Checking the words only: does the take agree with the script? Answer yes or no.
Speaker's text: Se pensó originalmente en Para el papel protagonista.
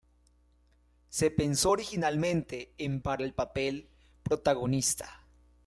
yes